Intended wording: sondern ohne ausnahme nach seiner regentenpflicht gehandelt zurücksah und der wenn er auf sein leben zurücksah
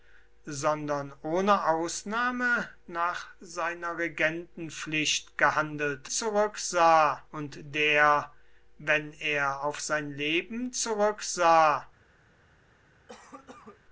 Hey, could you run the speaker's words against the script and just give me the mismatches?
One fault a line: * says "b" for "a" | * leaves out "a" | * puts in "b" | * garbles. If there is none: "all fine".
all fine